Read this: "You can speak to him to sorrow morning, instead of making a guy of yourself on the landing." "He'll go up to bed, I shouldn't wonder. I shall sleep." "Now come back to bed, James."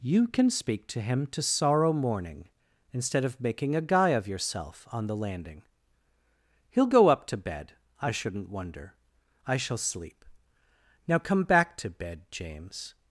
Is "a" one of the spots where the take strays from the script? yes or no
no